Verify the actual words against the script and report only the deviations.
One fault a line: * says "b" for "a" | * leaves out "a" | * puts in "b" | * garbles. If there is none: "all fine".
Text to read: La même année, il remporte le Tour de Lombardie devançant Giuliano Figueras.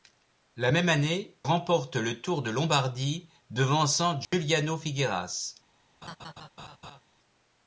* leaves out "il"